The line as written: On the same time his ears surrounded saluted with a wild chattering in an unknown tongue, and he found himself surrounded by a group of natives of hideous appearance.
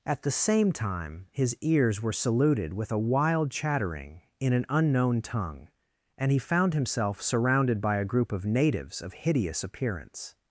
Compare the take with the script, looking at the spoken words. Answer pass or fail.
fail